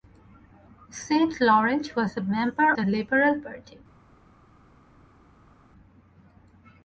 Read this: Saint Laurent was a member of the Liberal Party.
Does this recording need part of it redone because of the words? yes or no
yes